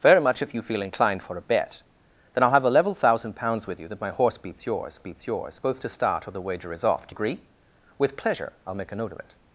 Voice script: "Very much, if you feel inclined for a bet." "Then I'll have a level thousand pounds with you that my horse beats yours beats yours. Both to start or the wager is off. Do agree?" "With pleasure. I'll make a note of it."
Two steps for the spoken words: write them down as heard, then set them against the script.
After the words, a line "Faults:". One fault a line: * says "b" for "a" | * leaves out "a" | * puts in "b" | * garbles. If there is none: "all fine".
"Very much, if you feel inclined for a bet." "Then I'll have a level thousand pounds with you that my horse beats yours beats yours. Both to start or the wager is off. Do agree?" "With pleasure. I'll make a note of it."
Faults:
all fine